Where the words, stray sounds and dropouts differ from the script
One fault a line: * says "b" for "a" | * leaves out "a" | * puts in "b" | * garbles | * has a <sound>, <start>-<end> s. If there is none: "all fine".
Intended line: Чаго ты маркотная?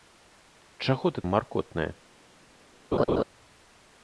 * has a laugh, 2.9-3.2 s